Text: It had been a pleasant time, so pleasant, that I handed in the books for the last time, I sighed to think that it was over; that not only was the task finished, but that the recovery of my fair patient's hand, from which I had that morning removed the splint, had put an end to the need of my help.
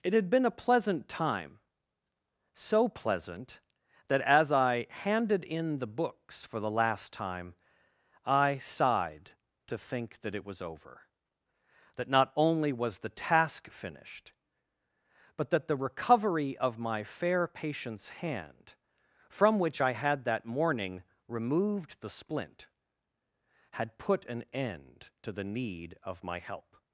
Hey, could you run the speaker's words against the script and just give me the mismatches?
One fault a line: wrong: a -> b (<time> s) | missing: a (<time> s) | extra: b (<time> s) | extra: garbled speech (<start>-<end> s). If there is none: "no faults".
extra: as (4.2 s)